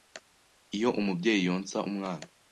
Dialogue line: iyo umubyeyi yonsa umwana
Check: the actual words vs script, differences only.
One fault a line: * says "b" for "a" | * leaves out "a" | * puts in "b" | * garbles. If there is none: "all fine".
all fine